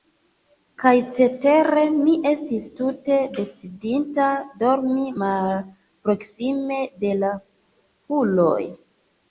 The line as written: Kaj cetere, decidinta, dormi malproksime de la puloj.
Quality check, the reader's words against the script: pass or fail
fail